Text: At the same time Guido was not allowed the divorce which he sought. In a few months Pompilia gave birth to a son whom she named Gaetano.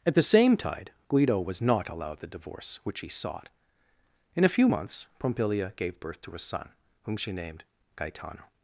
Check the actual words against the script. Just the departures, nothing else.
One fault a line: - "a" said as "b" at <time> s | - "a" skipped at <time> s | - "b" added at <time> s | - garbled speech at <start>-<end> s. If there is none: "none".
- "time" said as "tide" at 0.6 s